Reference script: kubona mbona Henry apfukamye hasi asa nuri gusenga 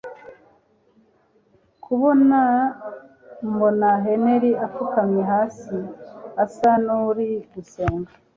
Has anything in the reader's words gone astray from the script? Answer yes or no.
no